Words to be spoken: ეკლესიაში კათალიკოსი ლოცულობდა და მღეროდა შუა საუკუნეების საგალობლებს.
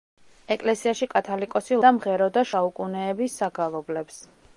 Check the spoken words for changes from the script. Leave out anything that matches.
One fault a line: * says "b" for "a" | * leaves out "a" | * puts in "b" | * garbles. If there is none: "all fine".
* leaves out "ლოცულობდა"
* leaves out "შუა"